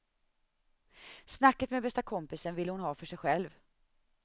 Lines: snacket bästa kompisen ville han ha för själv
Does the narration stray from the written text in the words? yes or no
yes